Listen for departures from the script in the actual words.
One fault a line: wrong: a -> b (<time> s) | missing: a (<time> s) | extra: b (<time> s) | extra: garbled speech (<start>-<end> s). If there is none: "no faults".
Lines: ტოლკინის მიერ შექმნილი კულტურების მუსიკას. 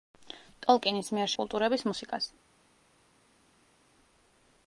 missing: შექმნილი (1.3 s)